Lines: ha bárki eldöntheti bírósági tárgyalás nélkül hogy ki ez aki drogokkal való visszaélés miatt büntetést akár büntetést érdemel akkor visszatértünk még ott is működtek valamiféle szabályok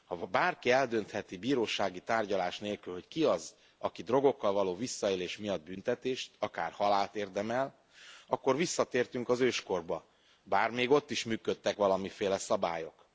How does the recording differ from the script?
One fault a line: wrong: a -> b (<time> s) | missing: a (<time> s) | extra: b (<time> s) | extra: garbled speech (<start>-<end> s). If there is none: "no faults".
wrong: ez -> az (3.2 s)
wrong: büntetést -> halált (6.7 s)
extra: az őskorba bár (9.3 s)